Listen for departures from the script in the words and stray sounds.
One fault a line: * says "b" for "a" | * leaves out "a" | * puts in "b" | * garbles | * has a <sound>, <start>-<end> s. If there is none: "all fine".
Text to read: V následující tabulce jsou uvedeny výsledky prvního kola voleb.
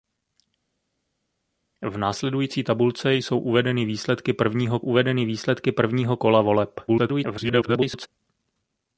* puts in "uvedeny výsledky prvního"
* garbles